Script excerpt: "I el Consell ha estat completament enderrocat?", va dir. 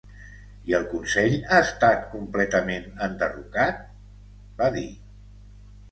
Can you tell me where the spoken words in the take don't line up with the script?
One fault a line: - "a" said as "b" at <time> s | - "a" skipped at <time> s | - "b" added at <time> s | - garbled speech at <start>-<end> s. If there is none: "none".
none